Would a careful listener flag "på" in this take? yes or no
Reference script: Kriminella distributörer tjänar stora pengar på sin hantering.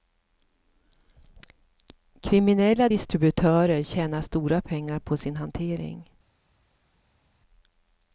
no